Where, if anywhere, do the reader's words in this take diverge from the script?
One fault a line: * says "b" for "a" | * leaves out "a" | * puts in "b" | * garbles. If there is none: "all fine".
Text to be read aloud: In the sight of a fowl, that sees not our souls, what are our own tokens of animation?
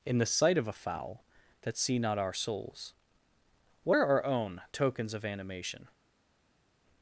* says "see" for "sees"